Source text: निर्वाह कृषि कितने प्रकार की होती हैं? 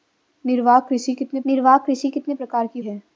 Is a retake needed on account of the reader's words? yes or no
yes